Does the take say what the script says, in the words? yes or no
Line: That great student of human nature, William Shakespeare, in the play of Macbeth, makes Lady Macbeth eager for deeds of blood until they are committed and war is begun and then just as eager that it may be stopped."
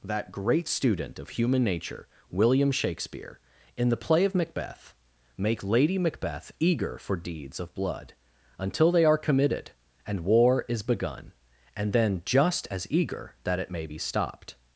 no